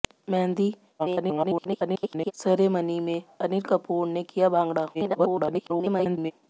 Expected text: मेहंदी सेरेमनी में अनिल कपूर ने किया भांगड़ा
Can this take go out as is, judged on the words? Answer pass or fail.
fail